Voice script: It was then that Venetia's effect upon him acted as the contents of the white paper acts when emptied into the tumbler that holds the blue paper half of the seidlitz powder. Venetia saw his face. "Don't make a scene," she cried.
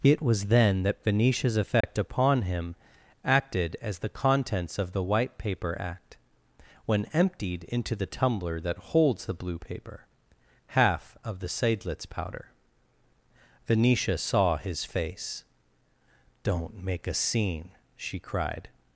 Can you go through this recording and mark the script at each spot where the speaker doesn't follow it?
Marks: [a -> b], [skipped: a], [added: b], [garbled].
It was then that Venetia's effect upon him acted as the contents of the white paper [acts -> act] when emptied into the tumbler that holds the blue paper half of the seidlitz powder. Venetia saw his face. "Don't make a scene," she cried.